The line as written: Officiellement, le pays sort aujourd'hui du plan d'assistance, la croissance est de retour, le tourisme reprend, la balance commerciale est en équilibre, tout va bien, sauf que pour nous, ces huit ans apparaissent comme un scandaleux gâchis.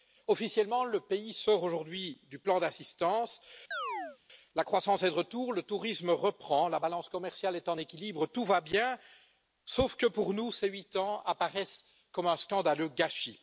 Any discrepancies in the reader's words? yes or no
no